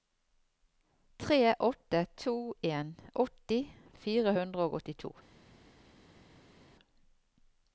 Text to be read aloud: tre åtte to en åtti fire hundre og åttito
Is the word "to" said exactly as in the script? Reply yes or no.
yes